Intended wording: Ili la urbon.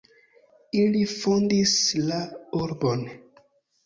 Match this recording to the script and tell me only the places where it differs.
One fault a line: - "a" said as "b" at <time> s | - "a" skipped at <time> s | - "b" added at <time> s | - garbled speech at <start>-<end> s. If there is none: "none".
- "fondis" added at 1.1 s